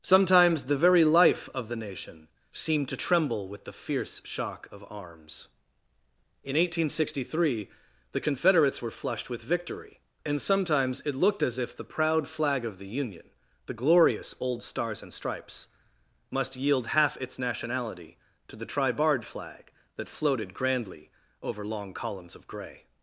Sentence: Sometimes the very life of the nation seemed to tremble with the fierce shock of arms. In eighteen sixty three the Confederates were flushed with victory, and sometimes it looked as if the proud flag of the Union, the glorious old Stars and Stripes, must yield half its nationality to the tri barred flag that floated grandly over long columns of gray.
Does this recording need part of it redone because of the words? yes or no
no